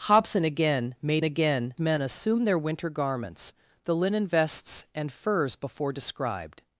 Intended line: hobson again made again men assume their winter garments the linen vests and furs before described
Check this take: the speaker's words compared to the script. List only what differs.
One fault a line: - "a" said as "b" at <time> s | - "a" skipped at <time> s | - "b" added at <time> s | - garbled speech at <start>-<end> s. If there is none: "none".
none